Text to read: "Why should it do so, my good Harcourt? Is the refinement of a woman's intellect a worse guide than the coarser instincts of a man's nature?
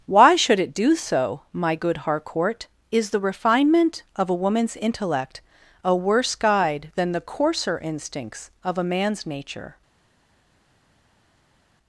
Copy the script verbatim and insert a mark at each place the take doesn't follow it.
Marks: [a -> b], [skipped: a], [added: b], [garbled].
"Why should it do so, my good Harcourt? Is the refinement of a woman's intellect a worse guide than the coarser instincts of a man's nature?